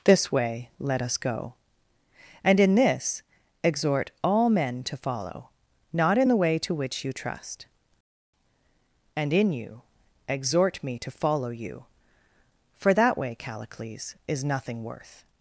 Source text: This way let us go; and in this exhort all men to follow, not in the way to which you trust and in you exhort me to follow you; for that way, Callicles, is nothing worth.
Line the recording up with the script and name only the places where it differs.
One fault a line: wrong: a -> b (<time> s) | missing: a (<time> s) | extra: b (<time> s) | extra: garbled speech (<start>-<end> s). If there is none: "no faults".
no faults